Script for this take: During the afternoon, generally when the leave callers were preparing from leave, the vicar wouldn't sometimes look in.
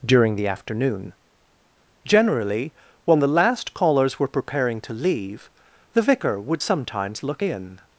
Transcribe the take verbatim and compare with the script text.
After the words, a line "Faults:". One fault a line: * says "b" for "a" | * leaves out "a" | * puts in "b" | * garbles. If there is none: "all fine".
During the afternoon, generally when the last callers were preparing to leave, the vicar would sometimes look in.
Faults:
* says "last" for "leave"
* says "to" for "from"
* says "would" for "wouldn't"